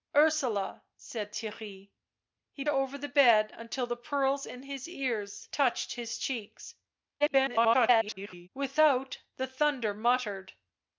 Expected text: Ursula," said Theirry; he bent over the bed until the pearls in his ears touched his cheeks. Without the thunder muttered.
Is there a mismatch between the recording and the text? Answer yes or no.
yes